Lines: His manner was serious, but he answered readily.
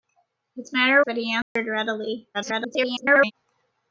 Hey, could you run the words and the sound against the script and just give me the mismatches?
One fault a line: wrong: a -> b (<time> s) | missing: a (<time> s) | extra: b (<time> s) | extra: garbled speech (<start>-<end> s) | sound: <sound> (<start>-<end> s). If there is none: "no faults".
missing: was serious (1.0 s)
sound: dropout (1.4-1.6 s)
extra: garbled speech (2.3-3.3 s)